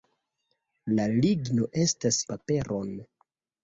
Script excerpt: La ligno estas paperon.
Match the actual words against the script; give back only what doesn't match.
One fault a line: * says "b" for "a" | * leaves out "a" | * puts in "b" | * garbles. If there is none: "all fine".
all fine